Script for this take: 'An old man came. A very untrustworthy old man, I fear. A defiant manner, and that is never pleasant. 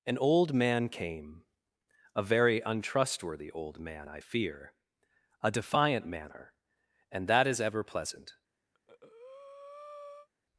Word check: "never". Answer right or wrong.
wrong